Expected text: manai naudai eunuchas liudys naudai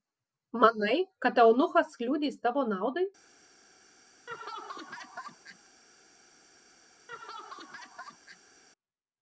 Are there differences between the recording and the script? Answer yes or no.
yes